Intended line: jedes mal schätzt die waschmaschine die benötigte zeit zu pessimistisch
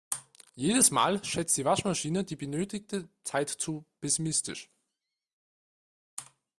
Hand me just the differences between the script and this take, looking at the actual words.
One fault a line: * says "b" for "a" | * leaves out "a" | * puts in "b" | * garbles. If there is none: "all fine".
all fine